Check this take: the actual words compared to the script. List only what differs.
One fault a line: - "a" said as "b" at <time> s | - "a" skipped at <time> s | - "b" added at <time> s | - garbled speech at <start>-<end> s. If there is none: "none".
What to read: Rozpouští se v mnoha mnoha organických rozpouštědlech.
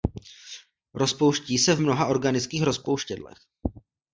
- "mnoha" skipped at 2.1 s